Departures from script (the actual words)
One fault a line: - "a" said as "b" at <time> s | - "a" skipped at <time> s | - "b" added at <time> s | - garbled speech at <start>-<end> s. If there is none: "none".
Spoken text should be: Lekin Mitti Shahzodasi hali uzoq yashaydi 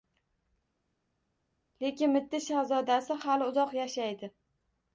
none